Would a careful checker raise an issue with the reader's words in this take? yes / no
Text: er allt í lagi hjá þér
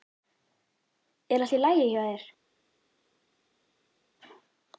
no